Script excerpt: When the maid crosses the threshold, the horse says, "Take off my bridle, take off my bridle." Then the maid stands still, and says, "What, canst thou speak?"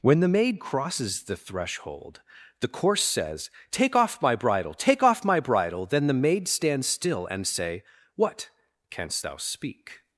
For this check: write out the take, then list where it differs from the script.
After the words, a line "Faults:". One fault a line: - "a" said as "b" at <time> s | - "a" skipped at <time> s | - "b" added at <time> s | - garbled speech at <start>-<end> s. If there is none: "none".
When the maid crosses the threshold, the course says, "Take off my bridle, take off my bridle." Then the maid stands still, and say, "What, canst thou speak?"
Faults:
- "horse" said as "course" at 2.7 s
- "says" said as "say" at 7.5 s